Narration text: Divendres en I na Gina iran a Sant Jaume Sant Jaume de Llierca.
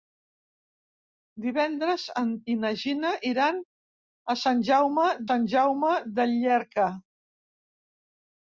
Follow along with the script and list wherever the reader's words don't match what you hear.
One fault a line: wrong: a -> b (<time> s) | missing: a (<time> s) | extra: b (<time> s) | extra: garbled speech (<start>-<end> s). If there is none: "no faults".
no faults